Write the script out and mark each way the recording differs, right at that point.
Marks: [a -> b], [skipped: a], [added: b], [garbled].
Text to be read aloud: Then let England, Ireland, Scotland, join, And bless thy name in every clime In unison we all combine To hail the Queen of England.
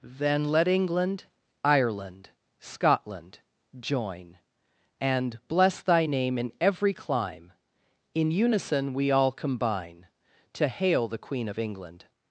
Then let England, Ireland, Scotland, join, And bless thy name in every clime In unison we all combine To hail the Queen of England.